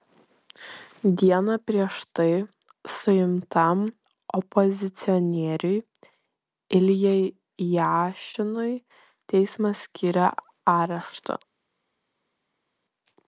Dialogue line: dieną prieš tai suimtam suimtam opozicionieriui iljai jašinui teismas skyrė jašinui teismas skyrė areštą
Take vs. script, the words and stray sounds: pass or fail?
fail